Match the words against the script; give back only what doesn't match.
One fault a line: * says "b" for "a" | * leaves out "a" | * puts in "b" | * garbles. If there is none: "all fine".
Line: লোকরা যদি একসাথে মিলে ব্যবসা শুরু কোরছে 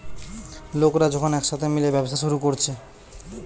* says "যখন" for "যদি"